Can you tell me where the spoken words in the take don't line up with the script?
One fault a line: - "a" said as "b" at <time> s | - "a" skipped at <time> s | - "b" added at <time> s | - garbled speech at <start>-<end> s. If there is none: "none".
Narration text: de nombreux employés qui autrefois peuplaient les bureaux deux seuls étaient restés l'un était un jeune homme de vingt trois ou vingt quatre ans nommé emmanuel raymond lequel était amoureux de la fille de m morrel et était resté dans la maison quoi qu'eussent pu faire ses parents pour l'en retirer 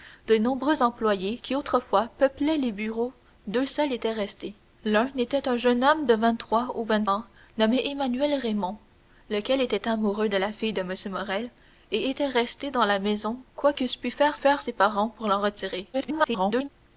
- "quatre" skipped at 7.0 s
- "faire" added at 14.3 s
- garbled speech at 15.9-16.7 s